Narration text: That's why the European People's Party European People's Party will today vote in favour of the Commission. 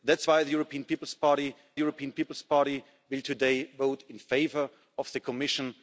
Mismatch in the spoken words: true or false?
false